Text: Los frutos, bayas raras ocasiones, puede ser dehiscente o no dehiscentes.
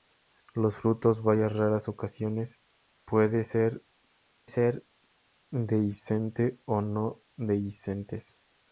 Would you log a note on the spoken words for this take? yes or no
yes